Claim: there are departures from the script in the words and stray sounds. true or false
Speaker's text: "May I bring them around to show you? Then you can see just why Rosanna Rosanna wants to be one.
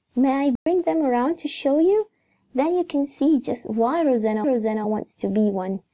true